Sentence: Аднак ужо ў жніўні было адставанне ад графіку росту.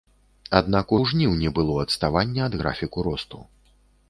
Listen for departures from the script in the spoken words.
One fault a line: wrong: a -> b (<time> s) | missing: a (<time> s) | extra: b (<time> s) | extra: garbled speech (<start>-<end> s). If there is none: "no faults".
missing: ужо (0.9 s)